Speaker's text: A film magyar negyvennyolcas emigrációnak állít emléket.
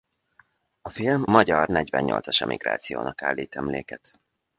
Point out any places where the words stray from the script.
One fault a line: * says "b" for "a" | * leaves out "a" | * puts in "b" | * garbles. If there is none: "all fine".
all fine